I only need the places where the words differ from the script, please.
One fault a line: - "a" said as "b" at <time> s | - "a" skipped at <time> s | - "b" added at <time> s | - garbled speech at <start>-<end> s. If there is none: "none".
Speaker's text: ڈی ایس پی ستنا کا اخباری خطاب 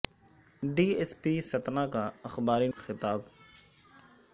none